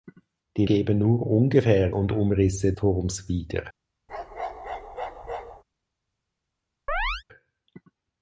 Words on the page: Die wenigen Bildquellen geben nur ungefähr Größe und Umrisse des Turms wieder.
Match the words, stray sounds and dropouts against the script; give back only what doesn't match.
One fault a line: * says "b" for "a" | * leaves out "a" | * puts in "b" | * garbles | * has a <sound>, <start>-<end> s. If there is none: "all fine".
* leaves out "wenigen Bildquellen"
* leaves out "Größe"
* leaves out "des"
* has a bark, 4.1-5.6 s
* has a chirp, 6.9-7.2 s